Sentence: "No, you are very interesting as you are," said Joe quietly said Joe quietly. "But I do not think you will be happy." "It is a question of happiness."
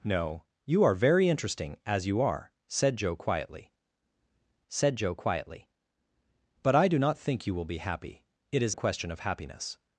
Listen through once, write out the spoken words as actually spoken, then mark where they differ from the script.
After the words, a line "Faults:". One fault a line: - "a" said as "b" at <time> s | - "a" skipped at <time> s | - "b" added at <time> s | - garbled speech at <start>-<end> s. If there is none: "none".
"No, you are very interesting as you are," said Joe quietly said Joe quietly. "But I do not think you will be happy." "It is a question of happiness."
Faults:
none